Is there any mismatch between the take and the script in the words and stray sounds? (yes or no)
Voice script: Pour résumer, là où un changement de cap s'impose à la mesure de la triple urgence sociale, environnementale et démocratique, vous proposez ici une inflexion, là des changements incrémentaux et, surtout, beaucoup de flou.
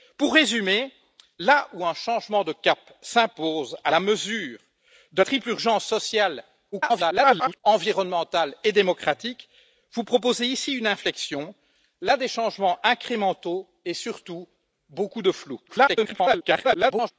yes